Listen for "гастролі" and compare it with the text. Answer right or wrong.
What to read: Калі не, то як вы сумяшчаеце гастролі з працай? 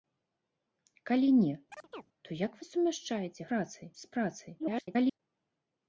wrong